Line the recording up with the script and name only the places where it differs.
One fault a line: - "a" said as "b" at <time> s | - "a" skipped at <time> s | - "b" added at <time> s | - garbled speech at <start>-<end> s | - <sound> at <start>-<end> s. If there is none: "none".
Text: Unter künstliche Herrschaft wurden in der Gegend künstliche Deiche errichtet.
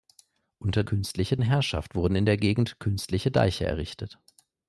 none